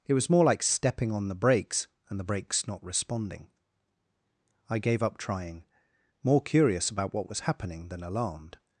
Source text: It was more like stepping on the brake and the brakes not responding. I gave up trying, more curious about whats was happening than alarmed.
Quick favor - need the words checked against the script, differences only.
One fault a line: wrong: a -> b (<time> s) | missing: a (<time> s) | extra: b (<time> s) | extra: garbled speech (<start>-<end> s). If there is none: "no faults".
wrong: brake -> brakes (1.4 s)
wrong: whats -> what (7.1 s)